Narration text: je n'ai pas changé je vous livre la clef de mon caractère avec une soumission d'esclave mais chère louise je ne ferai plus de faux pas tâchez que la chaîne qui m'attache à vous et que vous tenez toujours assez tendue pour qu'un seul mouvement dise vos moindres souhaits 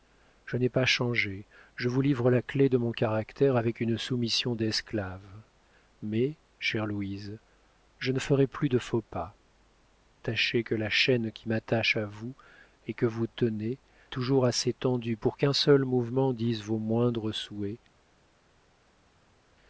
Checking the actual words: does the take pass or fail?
pass